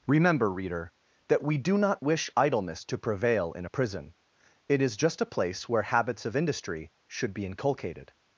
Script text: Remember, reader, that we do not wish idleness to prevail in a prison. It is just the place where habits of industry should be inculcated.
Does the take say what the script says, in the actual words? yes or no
no